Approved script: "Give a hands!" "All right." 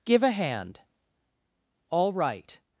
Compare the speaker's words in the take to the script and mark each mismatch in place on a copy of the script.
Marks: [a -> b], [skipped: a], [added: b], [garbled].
"Give a [hands!" -> hand] "All right."